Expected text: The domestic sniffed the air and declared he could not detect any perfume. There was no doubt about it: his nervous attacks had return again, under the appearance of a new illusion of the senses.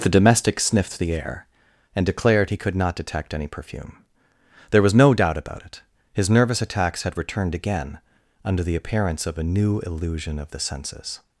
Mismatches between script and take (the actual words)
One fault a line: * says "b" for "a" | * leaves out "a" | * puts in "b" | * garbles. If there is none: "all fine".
* says "returned" for "return"